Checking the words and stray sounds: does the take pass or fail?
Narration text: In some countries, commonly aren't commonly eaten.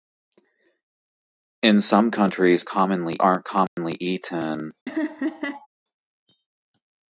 fail